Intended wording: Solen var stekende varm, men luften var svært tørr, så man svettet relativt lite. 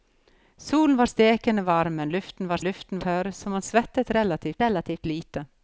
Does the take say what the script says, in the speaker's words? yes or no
no